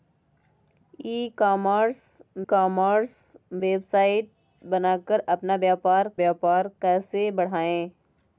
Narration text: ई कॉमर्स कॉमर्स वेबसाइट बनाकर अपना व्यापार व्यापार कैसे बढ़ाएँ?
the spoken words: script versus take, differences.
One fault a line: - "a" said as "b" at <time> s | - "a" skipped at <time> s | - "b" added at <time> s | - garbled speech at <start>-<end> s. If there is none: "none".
none